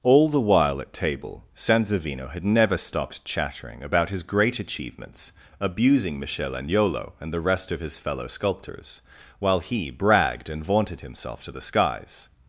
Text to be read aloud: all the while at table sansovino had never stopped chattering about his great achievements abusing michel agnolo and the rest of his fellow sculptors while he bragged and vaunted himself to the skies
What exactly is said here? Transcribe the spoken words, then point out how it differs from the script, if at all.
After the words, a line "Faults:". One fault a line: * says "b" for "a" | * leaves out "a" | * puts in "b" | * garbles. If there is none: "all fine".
all the while at table sansovino had never stopped chattering about his great achievements abusing michel agnolo and the rest of his fellow sculptors while he bragged and vaunted himself to the skies
Faults:
all fine